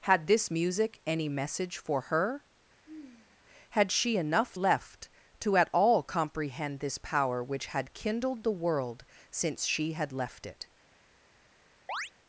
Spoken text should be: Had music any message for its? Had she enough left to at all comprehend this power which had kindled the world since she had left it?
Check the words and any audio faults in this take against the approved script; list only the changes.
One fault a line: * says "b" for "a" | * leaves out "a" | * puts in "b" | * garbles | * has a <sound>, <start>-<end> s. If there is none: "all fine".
* puts in "this"
* says "her" for "its"
* has a sigh, 2.8-3.4 s
* has a chirp, 11.9-12.1 s